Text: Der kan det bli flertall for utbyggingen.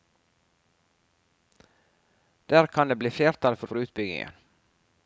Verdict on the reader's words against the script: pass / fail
fail